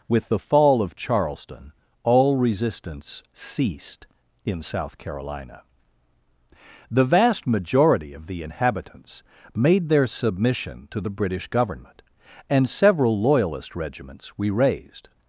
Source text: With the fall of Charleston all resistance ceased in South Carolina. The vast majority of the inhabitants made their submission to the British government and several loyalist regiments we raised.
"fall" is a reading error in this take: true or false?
false